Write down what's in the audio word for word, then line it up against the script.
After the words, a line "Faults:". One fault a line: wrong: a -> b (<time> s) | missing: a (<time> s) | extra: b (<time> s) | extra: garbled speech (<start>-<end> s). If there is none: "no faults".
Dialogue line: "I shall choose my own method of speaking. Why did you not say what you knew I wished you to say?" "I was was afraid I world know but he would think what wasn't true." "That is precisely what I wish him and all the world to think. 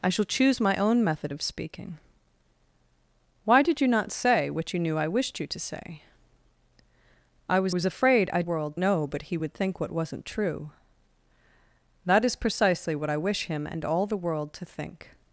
"I shall choose my own method of speaking. Why did you not say what you knew I wished you to say?" "I was was afraid I world know but he would think what wasn't true." "That is precisely what I wish him and all the world to think.
Faults:
no faults